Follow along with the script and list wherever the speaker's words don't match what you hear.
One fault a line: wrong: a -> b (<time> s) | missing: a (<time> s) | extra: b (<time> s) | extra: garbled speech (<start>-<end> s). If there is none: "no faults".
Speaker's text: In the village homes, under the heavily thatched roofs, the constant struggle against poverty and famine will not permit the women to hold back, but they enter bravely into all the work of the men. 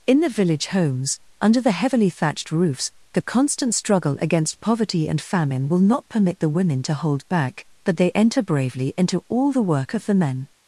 no faults